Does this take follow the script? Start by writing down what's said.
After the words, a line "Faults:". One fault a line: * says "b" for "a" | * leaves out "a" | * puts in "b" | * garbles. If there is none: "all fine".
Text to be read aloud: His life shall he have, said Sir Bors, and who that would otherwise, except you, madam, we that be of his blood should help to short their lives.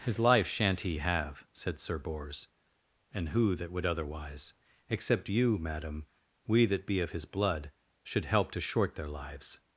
His life shan't he have, said Sir Bors, and who that would otherwise, except you, madam, we that be of his blood should help to short their lives.
Faults:
* says "shan't" for "shall"